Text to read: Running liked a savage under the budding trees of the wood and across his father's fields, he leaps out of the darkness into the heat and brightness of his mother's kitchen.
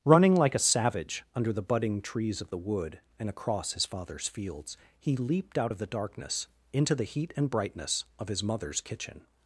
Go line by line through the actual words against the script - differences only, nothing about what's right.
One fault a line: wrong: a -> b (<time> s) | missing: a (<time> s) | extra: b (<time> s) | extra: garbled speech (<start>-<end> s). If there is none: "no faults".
wrong: liked -> like (0.3 s)
wrong: leaps -> leaped (5.2 s)